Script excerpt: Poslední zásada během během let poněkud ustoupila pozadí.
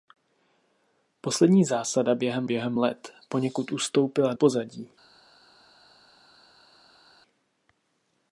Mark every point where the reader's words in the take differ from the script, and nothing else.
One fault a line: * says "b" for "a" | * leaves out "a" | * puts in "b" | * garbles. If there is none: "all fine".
all fine